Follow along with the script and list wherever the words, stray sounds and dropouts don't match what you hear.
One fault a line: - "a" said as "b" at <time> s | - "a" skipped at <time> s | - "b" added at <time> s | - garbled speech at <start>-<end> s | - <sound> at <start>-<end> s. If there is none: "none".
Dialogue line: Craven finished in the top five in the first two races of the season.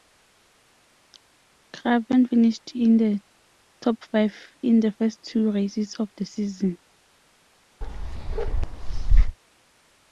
- bark at 7.8-9.4 s